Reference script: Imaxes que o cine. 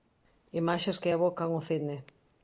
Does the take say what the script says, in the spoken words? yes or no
no